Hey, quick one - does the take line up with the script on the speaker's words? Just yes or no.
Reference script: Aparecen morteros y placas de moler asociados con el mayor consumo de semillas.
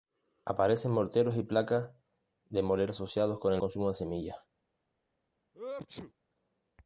no